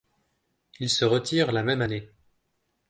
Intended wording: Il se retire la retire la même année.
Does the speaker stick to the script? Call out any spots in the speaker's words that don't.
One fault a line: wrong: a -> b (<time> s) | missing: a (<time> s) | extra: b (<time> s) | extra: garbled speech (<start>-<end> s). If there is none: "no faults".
missing: retire la (1.6 s)